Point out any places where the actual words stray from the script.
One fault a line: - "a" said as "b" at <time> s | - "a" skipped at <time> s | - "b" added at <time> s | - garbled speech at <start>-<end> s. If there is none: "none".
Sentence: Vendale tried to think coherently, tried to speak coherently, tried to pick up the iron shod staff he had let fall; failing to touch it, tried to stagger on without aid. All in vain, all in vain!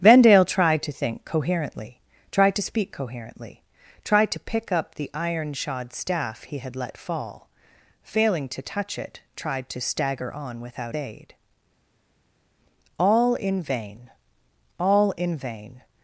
none